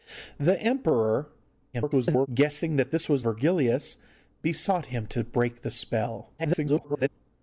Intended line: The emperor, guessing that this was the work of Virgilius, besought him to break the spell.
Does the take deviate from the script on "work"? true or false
true